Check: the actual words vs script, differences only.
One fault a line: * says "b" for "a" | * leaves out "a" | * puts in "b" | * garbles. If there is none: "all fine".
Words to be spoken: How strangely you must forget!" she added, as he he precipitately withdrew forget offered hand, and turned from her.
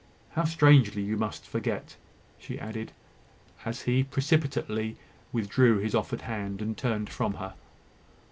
* leaves out "he"
* says "his" for "forget"